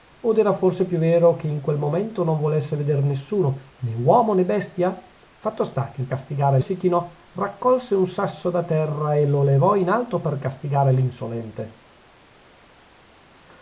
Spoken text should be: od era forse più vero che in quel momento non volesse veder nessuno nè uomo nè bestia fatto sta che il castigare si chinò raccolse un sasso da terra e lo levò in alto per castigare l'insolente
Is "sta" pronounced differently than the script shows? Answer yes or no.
no